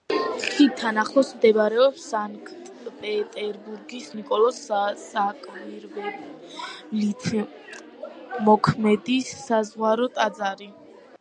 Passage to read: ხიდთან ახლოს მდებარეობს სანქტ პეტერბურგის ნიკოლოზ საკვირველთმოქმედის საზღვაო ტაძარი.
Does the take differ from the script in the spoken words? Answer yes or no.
no